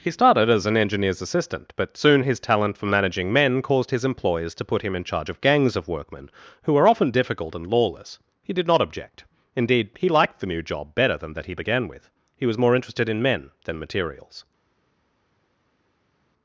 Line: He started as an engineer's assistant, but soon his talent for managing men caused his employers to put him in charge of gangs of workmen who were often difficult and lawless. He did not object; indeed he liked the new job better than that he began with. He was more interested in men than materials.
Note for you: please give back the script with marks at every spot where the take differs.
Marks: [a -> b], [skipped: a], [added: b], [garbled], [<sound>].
He started as an engineer's assistant, but soon his talent for managing men caused his employers to put him in charge of gangs of workmen who were often difficult and lawless. He did not object; indeed he liked the new job better than that he began with. He was more interested in men than materials.